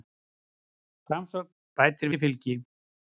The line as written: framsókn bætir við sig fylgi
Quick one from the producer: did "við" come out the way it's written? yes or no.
no